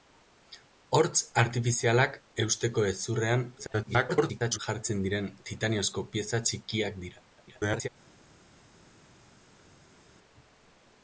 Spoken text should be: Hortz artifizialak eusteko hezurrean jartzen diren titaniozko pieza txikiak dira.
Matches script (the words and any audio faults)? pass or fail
fail